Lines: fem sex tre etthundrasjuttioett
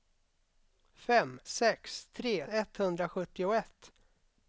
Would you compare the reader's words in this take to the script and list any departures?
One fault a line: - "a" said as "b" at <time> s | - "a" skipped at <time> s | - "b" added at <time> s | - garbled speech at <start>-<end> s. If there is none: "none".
none